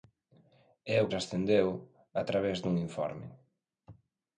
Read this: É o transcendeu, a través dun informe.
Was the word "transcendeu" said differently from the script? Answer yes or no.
no